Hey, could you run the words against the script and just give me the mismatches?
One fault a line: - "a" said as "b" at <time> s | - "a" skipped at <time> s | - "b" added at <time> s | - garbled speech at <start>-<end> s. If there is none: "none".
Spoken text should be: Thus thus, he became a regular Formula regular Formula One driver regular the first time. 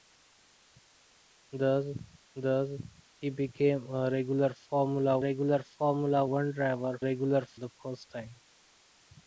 none